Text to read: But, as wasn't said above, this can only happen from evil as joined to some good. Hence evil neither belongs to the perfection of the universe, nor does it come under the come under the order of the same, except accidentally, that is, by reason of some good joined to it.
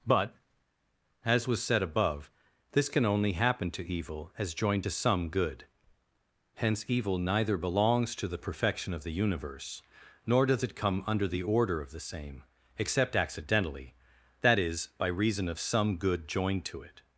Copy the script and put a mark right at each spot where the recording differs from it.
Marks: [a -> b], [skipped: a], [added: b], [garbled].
But, as [wasn't -> was] said above, this can only happen [from -> to] evil as joined to some good. Hence evil neither belongs to the perfection of the universe, nor does it come under the [skipped: come under the] order of the same, except accidentally, that is, by reason of some good joined to it.